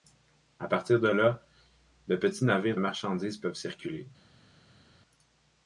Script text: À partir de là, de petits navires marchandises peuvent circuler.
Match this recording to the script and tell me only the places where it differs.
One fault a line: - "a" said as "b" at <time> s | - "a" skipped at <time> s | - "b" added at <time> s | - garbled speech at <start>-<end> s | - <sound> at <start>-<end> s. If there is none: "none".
none